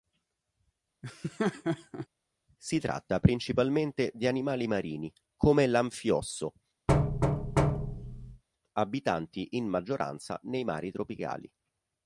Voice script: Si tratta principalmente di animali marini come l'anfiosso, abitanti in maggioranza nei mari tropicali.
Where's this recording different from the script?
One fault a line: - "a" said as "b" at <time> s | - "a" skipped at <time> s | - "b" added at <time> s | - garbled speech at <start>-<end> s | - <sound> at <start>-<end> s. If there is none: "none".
- laugh at 1.0-2.1 s
- thud at 6.9-8.4 s